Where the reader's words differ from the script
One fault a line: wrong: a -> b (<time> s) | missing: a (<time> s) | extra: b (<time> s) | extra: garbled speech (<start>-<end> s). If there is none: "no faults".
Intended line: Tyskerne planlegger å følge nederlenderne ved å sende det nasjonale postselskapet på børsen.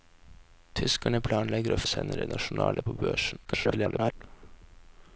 missing: følge nederlenderne ved (1.8 s)
missing: postselskapet (2.8 s)
extra: garbled speech (3.5-4.1 s)